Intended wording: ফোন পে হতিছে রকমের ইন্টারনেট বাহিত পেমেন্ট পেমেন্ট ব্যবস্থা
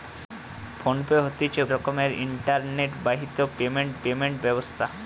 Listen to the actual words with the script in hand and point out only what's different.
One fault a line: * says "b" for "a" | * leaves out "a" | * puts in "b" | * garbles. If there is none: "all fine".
all fine